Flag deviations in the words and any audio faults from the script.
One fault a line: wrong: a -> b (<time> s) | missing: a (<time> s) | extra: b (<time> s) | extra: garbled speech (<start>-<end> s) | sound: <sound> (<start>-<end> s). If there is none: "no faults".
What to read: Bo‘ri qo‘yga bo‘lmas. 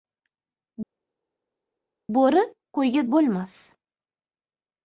no faults